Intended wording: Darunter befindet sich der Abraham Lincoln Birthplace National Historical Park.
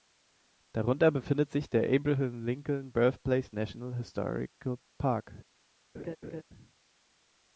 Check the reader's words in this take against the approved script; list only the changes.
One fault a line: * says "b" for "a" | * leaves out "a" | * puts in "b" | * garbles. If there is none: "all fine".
all fine